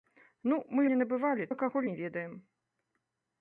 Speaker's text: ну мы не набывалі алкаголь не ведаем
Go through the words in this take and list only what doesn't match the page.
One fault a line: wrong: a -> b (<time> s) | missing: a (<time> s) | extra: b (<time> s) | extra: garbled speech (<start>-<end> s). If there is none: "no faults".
no faults